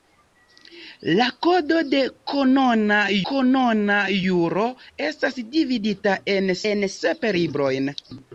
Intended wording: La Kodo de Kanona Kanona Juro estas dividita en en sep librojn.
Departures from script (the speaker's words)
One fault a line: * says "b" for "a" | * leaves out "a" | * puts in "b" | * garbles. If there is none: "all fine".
all fine